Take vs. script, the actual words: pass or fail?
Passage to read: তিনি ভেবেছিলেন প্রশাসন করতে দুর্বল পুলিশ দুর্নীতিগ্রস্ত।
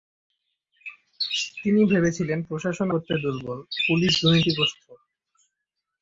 pass